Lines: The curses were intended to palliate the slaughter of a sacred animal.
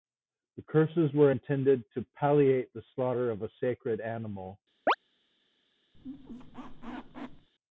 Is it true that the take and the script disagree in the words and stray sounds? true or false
true